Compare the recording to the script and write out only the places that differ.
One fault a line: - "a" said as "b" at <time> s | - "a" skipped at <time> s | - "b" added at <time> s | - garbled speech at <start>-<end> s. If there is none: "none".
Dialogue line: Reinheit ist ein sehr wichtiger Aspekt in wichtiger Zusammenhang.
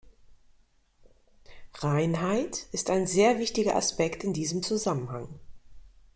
- "wichtiger" said as "diesem" at 4.3 s